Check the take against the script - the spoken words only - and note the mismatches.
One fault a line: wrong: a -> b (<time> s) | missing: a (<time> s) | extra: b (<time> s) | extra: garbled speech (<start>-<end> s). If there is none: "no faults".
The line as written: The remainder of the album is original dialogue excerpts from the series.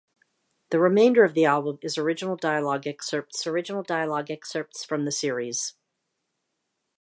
extra: original dialogue excerpts (3.4 s)